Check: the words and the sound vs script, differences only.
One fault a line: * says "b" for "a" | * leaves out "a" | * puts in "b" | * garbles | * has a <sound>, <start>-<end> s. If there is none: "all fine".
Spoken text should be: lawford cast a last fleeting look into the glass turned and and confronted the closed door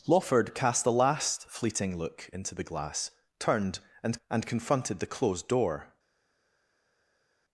all fine